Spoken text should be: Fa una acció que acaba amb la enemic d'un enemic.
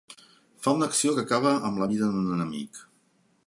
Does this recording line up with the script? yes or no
no